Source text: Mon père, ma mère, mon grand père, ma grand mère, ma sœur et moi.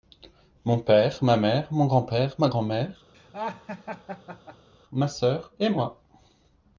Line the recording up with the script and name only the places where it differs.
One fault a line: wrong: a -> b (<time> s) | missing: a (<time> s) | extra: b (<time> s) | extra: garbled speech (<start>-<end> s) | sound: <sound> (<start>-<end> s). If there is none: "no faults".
sound: laugh (3.1-4.7 s)